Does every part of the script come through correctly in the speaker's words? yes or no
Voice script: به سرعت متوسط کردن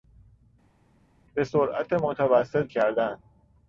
yes